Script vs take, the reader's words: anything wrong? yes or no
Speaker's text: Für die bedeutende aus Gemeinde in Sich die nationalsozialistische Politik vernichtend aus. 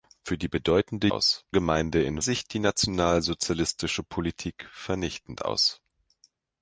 no